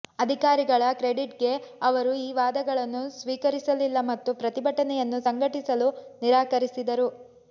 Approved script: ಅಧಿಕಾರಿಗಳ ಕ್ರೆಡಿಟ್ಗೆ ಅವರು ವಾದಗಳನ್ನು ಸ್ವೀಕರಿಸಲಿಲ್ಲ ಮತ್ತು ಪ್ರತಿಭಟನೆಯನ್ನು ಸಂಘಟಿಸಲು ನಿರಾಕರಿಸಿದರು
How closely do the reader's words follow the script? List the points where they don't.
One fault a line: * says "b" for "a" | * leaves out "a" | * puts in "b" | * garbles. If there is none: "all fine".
* puts in "ಈ"